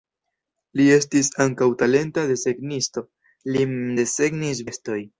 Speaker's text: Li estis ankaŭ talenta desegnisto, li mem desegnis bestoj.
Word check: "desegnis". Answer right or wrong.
right